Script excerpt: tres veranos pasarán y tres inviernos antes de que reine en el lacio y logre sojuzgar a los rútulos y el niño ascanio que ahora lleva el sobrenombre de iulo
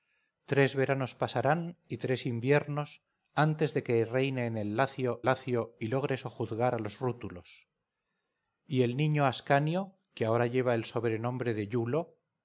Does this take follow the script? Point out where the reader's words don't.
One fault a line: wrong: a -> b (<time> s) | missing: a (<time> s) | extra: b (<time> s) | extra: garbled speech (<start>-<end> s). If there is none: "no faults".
extra: lacio (5.2 s)